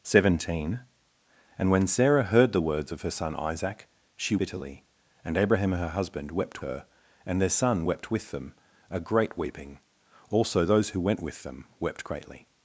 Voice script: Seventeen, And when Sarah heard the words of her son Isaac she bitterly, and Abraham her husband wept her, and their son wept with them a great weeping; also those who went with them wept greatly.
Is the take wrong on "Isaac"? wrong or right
right